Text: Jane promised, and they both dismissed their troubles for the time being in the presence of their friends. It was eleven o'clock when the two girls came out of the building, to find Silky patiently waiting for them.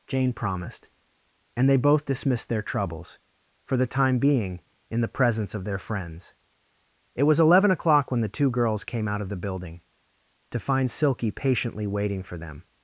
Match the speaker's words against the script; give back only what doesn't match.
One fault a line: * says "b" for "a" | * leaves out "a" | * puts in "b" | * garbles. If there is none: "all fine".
all fine